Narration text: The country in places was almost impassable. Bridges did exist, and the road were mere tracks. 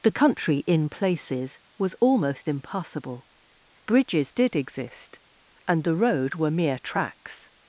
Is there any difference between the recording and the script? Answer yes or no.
no